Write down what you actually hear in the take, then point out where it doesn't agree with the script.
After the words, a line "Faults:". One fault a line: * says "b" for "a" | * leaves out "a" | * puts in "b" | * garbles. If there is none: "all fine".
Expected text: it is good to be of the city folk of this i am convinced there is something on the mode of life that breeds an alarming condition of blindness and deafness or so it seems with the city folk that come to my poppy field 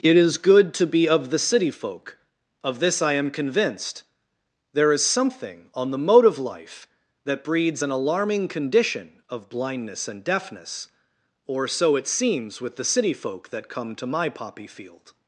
it is good to be of the city folk of this i am convinced there is something on the mode of life that breeds an alarming condition of blindness and deafness or so it seems with the city folk that come to my poppy field
Faults:
all fine